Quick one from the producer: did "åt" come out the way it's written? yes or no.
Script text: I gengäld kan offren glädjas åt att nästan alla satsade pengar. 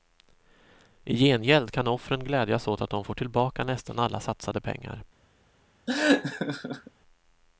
yes